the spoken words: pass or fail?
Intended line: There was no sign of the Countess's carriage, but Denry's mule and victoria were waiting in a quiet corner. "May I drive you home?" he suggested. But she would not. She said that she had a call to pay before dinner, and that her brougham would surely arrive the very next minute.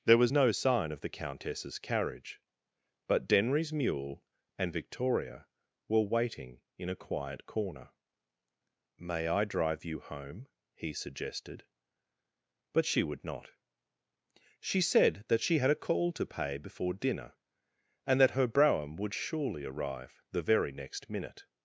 pass